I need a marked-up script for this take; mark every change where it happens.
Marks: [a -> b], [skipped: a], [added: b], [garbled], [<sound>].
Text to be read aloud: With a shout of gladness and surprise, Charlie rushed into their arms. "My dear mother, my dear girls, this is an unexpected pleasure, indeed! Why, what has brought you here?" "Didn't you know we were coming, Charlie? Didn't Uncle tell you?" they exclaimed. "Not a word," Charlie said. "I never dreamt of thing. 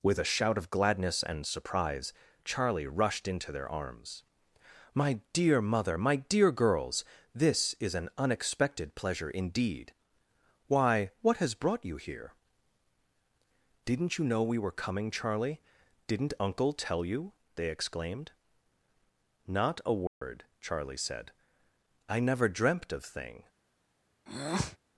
With a shout of gladness and surprise, Charlie rushed into their arms. "My dear mother, my dear girls, this is an unexpected pleasure, indeed! Why, what has brought you here?" "Didn't you know we were coming, Charlie? Didn't Uncle tell you?" they exclaimed. "Not a word," [dropout] Charlie said. "I never dreamt of thing. [breath]